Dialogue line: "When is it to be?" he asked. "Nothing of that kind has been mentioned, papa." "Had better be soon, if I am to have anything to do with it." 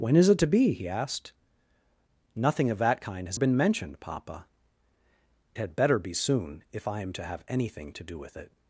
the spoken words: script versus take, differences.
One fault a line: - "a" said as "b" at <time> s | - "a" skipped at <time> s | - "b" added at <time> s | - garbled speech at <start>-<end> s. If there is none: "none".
none